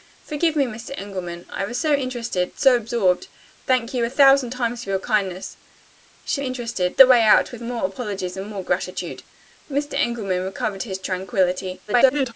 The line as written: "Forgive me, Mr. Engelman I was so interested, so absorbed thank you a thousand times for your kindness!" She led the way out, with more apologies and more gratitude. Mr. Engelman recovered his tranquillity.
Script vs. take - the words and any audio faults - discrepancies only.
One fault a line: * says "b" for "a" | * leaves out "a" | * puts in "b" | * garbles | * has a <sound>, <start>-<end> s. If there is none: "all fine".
* says "interested" for "led"
* garbles